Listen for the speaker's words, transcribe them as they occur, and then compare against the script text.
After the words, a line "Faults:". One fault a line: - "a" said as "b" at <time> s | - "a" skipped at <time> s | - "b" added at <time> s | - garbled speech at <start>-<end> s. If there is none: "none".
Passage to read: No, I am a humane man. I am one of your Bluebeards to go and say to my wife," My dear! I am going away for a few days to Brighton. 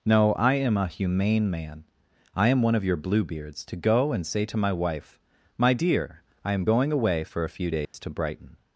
No, I am a humane man. I am one of your Bluebeards to go and say to my wife," My dear! I am going away for a few days to Brighton.
Faults:
none